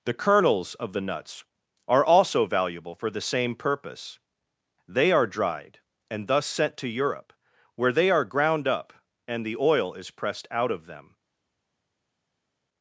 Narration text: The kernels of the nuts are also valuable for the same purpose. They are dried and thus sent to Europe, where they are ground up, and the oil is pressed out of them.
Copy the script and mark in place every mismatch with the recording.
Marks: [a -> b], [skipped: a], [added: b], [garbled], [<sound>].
The kernels of the nuts are also valuable for the same purpose. They are dried and thus sent to Europe, where they are ground up, and the oil is pressed out of them.